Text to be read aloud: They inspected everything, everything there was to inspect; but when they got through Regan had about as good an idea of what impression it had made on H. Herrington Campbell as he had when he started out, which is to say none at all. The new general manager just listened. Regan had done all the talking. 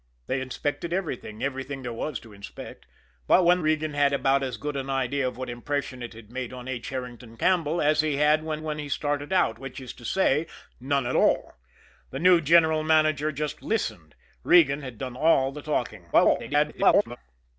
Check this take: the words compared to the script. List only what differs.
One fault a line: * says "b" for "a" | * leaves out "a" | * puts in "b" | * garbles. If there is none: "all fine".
* leaves out "they got through"
* puts in "when"
* garbles